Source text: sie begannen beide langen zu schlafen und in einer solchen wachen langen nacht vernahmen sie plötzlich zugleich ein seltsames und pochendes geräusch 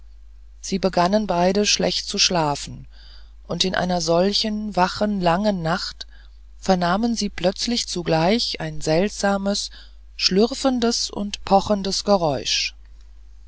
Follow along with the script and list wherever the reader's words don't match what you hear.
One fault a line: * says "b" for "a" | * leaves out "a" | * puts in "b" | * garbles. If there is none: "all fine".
* says "schlecht" for "langen"
* puts in "schlürfendes"